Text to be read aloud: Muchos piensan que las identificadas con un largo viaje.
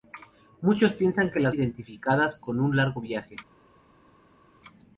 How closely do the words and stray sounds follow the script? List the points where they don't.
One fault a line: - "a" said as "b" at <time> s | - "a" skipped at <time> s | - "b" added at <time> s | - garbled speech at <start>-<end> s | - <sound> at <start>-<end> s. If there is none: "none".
none